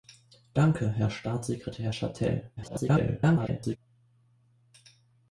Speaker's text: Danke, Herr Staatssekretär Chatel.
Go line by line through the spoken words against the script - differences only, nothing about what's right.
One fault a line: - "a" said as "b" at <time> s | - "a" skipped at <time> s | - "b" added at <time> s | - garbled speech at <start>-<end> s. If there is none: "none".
- garbled speech at 2.6-3.8 s